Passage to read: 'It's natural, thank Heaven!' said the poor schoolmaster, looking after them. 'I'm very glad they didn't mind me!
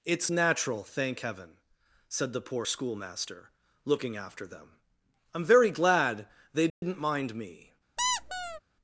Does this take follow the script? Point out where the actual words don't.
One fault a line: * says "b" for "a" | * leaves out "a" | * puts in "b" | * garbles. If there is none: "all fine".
all fine